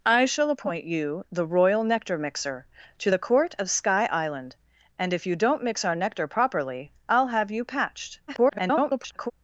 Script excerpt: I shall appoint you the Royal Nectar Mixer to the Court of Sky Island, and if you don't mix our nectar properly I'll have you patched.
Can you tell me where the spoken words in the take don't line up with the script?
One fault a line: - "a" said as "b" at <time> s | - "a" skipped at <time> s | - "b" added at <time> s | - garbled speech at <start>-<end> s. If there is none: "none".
- garbled speech at 8.3-9.3 s